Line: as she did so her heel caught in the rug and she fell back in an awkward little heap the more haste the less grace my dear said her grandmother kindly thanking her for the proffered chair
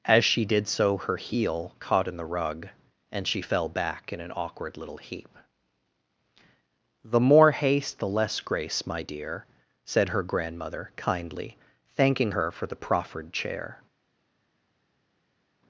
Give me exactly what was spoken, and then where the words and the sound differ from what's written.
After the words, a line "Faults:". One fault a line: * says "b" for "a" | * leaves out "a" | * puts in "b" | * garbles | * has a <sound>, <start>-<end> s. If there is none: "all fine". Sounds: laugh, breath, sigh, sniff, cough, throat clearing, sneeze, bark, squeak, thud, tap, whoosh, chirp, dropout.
as she did so her heel caught in the rug and she fell back in an awkward little heap the more haste the less grace my dear said her grandmother kindly thanking her for the proffered chair
Faults:
all fine